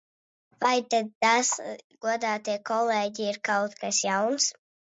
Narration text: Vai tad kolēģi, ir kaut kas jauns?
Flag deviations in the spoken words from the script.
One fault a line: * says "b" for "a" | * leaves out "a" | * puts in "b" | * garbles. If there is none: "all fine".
* puts in "tas godātie"